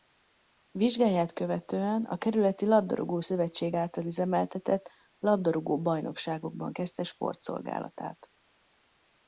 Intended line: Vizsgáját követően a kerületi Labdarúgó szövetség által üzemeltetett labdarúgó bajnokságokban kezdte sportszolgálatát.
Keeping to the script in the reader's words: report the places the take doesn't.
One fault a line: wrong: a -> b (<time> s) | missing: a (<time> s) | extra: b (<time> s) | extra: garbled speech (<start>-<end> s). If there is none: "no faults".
no faults